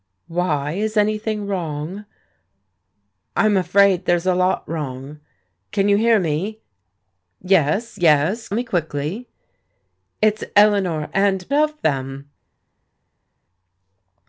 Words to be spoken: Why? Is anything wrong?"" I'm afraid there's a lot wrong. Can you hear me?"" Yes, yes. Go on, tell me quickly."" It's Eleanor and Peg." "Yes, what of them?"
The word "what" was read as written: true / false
false